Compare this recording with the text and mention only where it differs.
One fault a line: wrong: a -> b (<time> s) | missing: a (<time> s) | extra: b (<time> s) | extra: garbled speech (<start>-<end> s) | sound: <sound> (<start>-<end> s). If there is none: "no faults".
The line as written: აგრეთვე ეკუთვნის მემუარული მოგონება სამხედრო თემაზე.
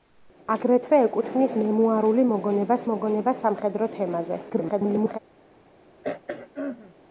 extra: მოგონება (2.9 s)
extra: garbled speech (4.5-5.2 s)
sound: throat clearing (6.0-6.9 s)